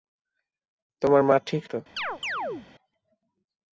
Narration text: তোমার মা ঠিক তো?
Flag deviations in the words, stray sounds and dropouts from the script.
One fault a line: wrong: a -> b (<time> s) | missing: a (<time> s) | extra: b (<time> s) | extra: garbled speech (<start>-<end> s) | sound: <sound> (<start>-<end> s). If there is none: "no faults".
sound: chirp (2.0-2.7 s)